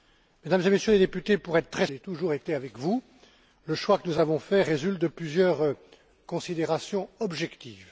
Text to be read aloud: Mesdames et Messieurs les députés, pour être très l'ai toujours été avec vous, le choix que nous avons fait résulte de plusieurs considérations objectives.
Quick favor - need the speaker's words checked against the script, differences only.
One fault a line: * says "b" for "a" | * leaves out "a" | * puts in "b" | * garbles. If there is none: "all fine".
all fine